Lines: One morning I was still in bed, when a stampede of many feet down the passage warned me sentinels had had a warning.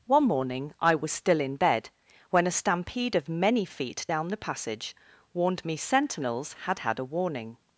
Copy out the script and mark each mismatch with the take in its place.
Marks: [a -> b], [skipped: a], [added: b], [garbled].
One morning I was still in bed, when a stampede of many feet down the passage warned me sentinels had had a warning.